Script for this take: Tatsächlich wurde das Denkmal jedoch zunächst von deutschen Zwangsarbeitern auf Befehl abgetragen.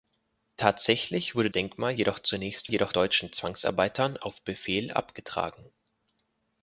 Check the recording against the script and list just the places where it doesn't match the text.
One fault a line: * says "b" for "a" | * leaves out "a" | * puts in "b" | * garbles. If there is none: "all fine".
* leaves out "das"
* says "jedoch" for "von"